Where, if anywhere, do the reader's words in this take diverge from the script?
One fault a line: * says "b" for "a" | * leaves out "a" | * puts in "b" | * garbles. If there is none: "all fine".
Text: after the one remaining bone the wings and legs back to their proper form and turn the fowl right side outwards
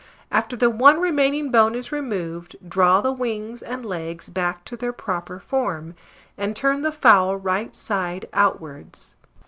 * puts in "is removed draw"